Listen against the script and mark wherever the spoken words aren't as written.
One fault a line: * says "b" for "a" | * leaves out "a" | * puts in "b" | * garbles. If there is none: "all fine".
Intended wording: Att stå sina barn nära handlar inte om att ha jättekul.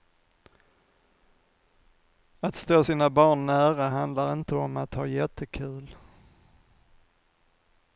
all fine